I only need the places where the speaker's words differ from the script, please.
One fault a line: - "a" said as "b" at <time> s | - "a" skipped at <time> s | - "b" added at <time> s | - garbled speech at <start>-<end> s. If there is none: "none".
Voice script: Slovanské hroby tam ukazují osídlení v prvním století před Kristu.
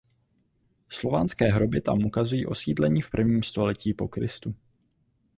- "před" said as "po" at 3.9 s